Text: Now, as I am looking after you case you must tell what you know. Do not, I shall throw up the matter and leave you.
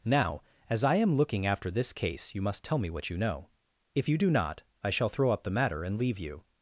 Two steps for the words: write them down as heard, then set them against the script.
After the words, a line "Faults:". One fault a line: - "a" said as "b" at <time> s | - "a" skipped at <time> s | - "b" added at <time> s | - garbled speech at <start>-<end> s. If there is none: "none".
Now, as I am looking after this case you must tell me what you know. If you do not, I shall throw up the matter and leave you.
Faults:
- "you" said as "this" at 1.7 s
- "me" added at 2.8 s
- "If you" added at 3.9 s